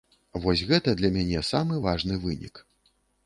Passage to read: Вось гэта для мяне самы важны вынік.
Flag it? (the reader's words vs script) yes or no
no